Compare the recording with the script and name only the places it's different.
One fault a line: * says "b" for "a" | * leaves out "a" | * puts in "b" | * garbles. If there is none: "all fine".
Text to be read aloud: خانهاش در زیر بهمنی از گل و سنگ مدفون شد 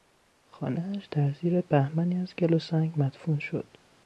all fine